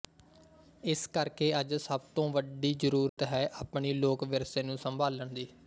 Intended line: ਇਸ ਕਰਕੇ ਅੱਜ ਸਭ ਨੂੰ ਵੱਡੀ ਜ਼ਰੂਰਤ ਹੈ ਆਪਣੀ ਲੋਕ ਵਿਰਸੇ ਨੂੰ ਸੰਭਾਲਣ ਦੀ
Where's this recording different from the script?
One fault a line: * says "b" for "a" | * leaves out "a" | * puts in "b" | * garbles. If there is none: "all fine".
* says "ਤੋਂ" for "ਨੂੰ"